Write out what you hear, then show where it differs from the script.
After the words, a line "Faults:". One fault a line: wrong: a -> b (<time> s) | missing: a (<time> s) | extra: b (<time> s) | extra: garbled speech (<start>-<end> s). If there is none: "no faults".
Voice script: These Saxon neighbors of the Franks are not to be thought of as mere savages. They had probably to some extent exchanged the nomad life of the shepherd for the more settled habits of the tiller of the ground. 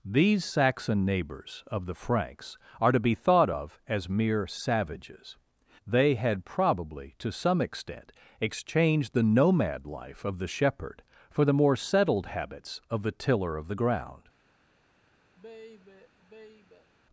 These Saxon neighbors of the Franks are to be thought of as mere savages. They had probably to some extent exchanged the nomad life of the shepherd for the more settled habits of the tiller of the ground.
Faults:
missing: not (2.9 s)